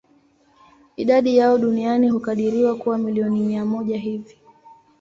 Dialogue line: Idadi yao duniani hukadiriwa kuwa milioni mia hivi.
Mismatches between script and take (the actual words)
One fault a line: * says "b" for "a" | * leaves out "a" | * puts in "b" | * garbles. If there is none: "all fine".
* puts in "moja"